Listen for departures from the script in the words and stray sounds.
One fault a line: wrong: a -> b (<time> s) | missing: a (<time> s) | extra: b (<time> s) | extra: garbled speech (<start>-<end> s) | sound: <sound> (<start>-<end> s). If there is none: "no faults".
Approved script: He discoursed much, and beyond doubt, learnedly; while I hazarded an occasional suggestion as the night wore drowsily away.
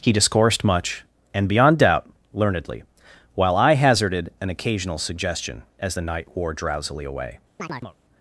sound: chirp (7.6-8.0 s)